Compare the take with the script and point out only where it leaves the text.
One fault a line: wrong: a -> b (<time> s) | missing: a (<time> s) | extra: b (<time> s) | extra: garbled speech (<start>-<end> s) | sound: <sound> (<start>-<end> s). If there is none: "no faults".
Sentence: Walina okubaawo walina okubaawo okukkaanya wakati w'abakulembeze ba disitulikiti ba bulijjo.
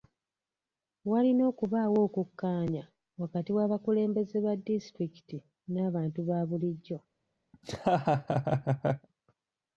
missing: walina okubaawo (2.0 s)
extra: n'abantu (5.7 s)
sound: laugh (7.5-9.1 s)